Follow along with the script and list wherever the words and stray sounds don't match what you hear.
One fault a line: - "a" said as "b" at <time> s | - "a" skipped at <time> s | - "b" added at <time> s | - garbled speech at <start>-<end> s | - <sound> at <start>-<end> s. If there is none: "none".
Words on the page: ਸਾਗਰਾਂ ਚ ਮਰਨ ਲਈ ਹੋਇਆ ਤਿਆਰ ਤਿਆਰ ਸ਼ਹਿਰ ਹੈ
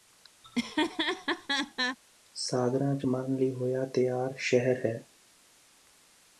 - laugh at 0.4-2.0 s
- "ਤਿਆਰ" skipped at 4.3 s